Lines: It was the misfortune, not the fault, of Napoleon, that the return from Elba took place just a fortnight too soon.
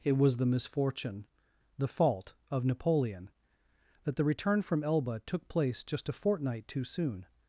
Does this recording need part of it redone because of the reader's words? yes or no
yes